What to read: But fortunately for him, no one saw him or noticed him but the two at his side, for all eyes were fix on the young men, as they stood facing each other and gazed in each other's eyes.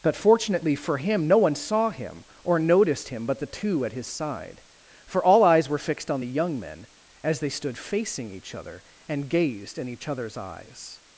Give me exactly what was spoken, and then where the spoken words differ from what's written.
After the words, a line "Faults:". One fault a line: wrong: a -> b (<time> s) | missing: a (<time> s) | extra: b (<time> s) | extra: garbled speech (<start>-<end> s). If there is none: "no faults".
But fortunately for him, no one saw him or noticed him but the two at his side, for all eyes were fixed on the young men, as they stood facing each other and gazed in each other's eyes.
Faults:
wrong: fix -> fixed (5.8 s)